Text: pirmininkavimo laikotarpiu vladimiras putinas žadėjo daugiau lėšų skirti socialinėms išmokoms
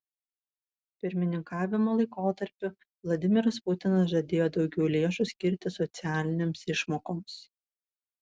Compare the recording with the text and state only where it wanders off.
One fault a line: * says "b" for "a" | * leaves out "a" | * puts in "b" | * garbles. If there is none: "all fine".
all fine